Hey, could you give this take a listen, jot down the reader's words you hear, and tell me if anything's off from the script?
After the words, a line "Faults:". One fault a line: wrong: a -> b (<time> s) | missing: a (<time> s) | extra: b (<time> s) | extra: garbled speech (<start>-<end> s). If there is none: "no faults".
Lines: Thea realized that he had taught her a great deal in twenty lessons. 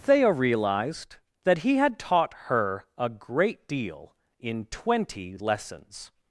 Thea realized that he had taught her a great deal in twenty lessons.
Faults:
no faults